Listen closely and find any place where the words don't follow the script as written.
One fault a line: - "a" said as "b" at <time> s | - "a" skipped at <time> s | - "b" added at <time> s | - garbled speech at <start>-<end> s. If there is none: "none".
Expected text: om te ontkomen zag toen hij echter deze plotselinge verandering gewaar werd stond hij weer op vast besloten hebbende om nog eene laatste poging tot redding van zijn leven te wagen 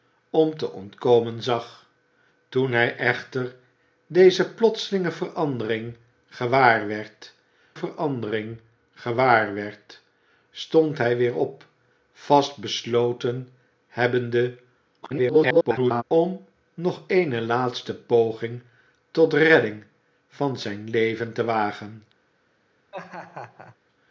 - "verandering gewaar werd" added at 7.7 s
- garbled speech at 15.0-16.0 s